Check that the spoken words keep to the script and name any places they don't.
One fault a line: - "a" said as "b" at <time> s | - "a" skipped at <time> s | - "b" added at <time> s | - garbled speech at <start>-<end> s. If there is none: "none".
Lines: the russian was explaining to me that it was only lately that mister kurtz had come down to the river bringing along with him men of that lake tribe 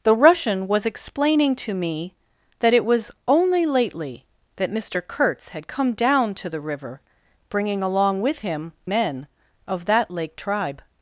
none